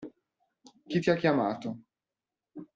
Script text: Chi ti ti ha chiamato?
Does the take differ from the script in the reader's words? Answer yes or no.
yes